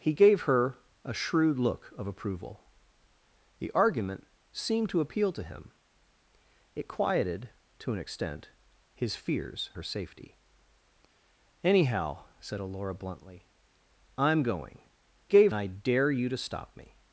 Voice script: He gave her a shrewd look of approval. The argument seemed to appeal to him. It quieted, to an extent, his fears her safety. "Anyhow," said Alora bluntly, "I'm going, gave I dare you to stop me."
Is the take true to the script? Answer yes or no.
yes